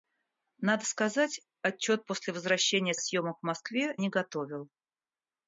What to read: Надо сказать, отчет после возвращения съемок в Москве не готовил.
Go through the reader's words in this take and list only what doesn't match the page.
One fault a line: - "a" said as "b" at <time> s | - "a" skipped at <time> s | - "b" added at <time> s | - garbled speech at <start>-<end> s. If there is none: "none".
none